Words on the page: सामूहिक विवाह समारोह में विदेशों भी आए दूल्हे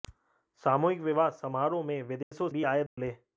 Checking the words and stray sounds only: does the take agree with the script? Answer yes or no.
no